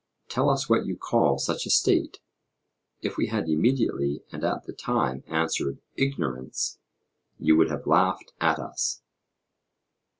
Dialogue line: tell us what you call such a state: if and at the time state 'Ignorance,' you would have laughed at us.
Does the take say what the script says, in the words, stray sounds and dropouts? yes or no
no